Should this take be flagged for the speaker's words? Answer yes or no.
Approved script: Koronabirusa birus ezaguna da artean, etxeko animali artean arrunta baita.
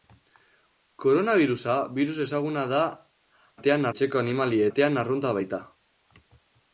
no